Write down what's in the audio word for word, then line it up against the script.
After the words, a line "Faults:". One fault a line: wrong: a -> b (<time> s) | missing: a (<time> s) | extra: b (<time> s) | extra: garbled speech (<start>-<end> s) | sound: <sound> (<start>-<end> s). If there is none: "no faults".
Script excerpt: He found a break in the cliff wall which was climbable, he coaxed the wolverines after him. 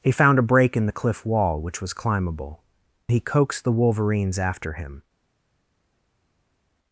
He found a break in the cliff wall which was climbable, he coaxed the wolverines after him.
Faults:
no faults